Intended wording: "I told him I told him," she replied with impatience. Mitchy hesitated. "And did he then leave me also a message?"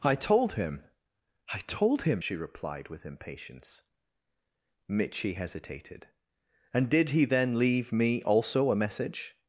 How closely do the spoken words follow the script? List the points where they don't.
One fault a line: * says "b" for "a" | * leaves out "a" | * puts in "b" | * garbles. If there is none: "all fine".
all fine